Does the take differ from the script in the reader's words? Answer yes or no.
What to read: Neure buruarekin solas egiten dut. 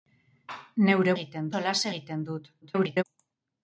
yes